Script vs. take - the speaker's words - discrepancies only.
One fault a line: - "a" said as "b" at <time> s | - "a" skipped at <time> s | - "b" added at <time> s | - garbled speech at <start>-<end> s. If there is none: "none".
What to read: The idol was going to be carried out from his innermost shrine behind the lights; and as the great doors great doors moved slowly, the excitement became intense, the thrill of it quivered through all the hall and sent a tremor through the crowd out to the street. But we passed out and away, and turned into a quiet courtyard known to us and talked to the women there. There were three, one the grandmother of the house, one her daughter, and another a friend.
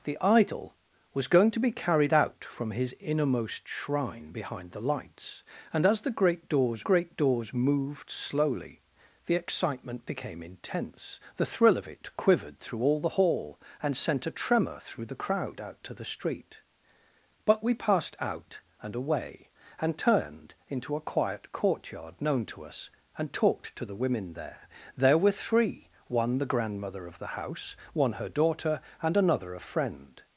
none